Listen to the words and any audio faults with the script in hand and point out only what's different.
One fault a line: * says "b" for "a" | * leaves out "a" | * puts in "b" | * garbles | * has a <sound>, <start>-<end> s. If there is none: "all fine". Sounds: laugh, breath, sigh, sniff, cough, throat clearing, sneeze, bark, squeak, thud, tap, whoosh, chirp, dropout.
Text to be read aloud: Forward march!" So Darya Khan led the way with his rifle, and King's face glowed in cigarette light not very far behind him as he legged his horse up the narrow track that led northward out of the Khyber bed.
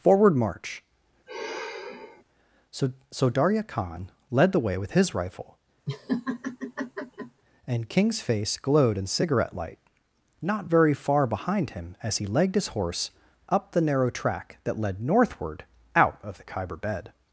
* has a sigh, 1.3-2.2 s
* puts in "So"
* has a laugh, 5.9-7.4 s